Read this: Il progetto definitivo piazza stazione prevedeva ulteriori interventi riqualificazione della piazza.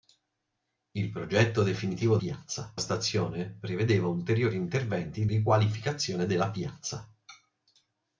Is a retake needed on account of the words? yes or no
no